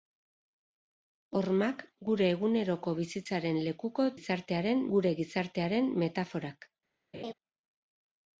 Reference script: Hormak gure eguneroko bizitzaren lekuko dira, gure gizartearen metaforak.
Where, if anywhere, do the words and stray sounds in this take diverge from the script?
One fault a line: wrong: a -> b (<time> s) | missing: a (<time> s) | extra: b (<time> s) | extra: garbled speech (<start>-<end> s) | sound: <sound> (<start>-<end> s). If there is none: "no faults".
wrong: dira -> gizartearen (4.2 s)
sound: laugh (7.1-7.3 s)